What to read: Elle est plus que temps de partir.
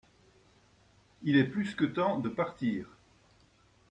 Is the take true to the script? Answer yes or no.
no